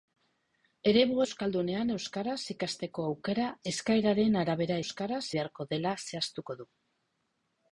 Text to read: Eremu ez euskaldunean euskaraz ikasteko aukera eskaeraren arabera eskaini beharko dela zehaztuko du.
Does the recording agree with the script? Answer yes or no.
no